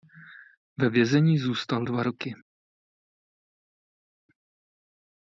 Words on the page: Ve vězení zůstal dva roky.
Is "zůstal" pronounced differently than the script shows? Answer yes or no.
no